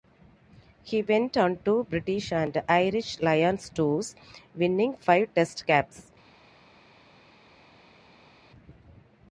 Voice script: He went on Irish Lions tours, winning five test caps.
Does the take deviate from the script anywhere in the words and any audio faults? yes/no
yes